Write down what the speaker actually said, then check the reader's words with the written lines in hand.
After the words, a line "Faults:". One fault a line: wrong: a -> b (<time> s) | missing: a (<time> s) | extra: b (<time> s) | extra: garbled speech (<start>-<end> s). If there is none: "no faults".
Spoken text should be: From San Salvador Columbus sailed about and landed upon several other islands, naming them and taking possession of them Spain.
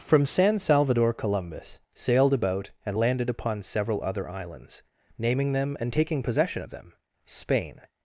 From San Salvador Columbus sailed about and landed upon several other islands, naming them and taking possession of them Spain.
Faults:
no faults